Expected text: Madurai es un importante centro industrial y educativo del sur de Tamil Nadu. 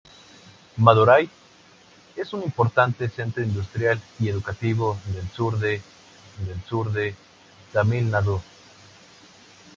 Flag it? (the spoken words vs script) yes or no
yes